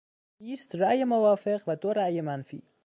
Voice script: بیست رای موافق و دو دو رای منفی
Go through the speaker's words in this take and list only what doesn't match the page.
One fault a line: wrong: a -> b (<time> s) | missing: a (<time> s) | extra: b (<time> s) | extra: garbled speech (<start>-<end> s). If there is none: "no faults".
missing: دو (1.9 s)